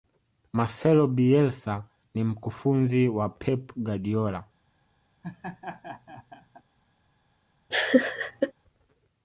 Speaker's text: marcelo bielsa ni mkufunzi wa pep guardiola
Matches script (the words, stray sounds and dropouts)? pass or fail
fail